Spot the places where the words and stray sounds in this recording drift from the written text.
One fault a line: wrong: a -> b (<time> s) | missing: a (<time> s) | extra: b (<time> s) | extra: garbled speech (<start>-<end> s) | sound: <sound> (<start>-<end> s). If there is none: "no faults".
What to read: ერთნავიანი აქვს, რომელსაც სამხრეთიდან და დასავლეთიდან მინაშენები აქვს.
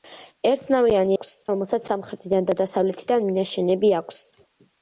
no faults